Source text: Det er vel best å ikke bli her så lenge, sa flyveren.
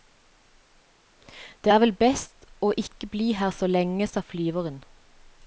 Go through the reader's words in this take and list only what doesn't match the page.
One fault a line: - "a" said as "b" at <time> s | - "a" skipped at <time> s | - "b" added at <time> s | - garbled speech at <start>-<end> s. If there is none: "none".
none